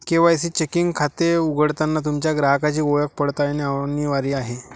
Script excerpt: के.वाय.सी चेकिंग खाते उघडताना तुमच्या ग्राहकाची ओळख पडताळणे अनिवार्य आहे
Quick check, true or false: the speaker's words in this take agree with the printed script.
true